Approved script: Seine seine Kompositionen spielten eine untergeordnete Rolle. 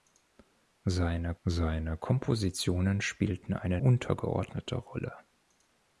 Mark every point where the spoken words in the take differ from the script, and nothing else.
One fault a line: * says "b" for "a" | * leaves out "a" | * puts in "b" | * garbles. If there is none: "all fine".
all fine